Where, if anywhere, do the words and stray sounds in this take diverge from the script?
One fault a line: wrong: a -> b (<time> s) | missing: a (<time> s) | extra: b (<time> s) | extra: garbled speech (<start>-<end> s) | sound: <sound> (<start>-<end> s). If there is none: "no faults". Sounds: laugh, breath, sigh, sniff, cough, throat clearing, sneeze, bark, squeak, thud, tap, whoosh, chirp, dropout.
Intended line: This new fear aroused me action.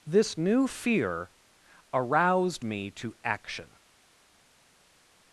extra: to (2.9 s)